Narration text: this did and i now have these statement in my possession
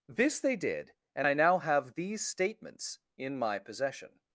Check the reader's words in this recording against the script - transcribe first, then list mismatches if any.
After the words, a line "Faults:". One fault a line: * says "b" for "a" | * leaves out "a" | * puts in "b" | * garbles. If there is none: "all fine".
this they did and i now have these statements in my possession
Faults:
* puts in "they"
* says "statements" for "statement"